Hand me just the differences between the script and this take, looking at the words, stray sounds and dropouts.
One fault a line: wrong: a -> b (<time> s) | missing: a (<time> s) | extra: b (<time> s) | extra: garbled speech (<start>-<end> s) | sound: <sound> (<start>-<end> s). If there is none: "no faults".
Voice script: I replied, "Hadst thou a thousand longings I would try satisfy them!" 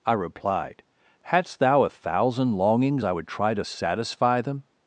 extra: to (3.5 s)